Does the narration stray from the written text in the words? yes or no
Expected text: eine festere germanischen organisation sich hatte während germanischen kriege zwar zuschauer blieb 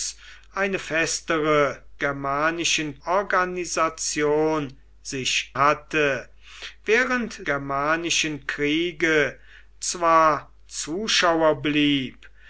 no